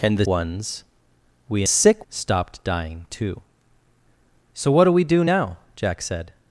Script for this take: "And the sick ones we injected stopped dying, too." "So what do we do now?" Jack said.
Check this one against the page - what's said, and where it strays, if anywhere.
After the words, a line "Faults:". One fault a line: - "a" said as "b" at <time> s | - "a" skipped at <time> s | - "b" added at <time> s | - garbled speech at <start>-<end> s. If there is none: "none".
"And the ones we sick stopped dying, too." "So what do we do now?" Jack said.
Faults:
- "sick" skipped at 0.2 s
- "injected" said as "sick" at 1.6 s